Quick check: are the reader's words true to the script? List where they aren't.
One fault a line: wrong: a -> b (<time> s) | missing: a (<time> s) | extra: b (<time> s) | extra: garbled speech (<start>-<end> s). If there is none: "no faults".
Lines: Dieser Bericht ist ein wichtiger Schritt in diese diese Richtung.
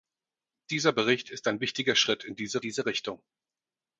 no faults